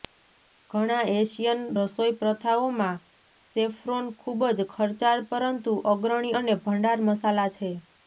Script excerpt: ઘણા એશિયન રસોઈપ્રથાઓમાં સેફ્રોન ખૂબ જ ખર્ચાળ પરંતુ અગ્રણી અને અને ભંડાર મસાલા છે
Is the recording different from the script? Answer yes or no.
yes